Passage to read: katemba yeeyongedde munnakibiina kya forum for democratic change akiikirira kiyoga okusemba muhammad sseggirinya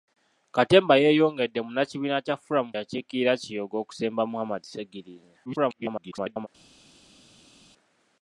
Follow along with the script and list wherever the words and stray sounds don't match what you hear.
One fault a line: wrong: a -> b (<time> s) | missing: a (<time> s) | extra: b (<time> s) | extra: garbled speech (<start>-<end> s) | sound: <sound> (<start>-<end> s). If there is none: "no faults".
missing: for democratic change (2.7 s)
extra: garbled speech (5.5-6.5 s)